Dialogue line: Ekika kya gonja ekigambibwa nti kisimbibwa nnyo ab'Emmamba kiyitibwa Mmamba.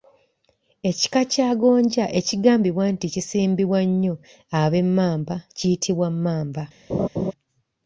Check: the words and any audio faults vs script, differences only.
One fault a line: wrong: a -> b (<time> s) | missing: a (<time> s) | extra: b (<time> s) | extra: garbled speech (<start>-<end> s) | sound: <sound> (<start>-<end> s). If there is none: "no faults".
sound: laugh (6.9-7.3 s)